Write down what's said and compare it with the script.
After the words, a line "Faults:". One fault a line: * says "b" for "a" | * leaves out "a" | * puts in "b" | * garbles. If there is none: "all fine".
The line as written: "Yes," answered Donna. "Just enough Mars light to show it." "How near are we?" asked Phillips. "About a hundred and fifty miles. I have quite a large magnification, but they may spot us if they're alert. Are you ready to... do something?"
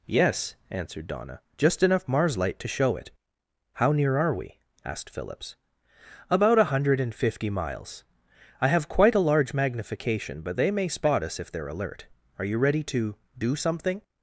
"Yes," answered Donna. "Just enough Mars light to show it." "How near are we?" asked Phillips. "About a hundred and fifty miles. I have quite a large magnification, but they may spot us if they're alert. Are you ready to... do something?"
Faults:
all fine